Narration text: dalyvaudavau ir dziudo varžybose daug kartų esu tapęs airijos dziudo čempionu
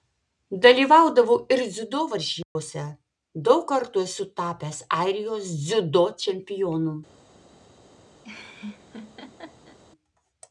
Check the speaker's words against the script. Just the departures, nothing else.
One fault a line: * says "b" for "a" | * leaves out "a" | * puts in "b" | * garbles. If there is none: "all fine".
all fine